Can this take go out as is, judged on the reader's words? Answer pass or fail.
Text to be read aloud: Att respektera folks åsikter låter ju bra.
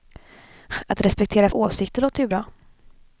fail